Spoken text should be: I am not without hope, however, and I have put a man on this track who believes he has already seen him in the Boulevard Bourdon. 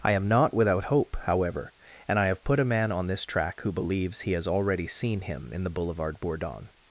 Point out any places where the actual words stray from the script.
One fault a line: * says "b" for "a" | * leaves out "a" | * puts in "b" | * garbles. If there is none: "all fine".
all fine